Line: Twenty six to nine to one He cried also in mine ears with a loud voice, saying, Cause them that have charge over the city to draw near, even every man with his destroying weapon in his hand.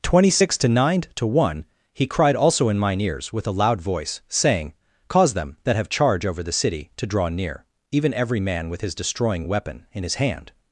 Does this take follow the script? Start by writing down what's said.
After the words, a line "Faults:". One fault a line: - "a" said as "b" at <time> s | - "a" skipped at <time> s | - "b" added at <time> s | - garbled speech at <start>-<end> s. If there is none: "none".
Twenty six to nine to one He cried also in mine ears with a loud voice, saying, Cause them that have charge over the city to draw near, even every man with his destroying weapon in his hand.
Faults:
none